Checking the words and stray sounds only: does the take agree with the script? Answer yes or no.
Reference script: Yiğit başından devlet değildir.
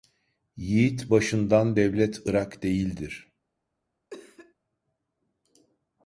no